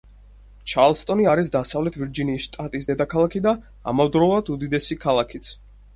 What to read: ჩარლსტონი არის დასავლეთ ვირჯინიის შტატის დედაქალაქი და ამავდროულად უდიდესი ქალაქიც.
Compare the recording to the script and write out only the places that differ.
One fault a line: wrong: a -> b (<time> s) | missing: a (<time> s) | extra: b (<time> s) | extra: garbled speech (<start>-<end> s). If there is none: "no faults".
no faults